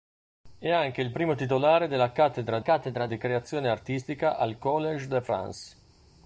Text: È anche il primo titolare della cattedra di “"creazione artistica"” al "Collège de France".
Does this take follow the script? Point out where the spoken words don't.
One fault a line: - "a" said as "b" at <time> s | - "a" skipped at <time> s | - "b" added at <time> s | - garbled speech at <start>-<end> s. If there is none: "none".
- "cattedra" added at 2.6 s